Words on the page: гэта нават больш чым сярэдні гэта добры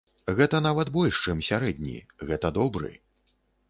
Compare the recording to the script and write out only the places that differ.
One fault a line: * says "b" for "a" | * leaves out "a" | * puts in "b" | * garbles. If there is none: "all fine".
all fine